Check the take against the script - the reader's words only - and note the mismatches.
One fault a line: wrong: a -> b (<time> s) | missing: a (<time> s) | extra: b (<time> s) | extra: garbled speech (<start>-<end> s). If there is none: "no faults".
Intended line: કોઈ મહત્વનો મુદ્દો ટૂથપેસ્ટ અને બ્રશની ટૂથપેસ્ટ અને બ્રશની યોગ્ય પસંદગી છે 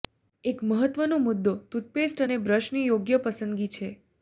wrong: કોઈ -> એક (0.4 s)
missing: ટૂથપેસ્ટ અને બ્રશની (2.9 s)